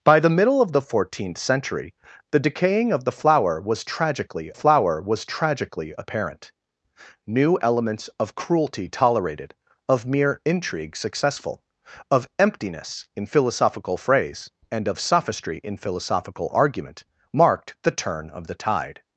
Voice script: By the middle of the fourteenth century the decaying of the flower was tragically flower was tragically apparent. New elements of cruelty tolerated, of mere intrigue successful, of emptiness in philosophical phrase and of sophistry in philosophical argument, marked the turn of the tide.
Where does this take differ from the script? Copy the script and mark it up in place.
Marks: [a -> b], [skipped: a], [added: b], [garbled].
By the middle of the fourteenth century the decaying of the flower was tragically flower was tragically apparent. New elements of cruelty tolerated, of mere intrigue successful, of emptiness in philosophical phrase and of sophistry in philosophical argument, marked the turn of the tide.